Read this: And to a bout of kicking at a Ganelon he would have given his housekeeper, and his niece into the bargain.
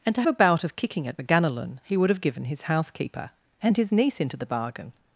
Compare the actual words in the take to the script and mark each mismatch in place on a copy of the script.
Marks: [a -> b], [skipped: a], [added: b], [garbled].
And to a bout of kicking at a Ganelon he would have given his housekeeper, and his niece into the bargain.